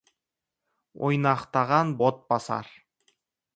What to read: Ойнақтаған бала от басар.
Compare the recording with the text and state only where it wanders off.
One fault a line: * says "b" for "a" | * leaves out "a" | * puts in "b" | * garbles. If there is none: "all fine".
* leaves out "бала"